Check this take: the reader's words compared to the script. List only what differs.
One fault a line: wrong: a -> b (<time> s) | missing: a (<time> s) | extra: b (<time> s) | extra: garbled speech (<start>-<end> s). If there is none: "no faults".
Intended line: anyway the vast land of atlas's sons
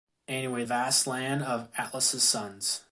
missing: the (0.6 s)